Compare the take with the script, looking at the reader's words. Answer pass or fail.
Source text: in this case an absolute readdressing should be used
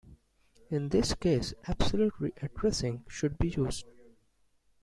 fail